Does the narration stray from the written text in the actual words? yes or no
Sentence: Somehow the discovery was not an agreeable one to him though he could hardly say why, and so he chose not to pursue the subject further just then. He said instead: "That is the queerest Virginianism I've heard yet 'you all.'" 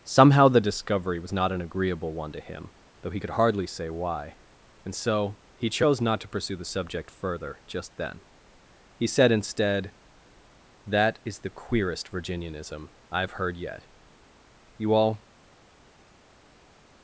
no